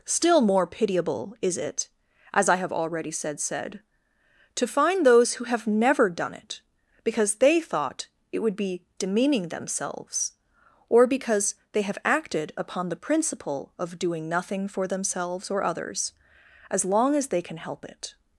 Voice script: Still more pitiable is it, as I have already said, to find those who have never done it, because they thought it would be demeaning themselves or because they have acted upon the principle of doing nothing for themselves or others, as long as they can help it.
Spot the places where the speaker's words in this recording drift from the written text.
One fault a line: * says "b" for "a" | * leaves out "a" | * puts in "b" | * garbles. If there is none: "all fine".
* puts in "said"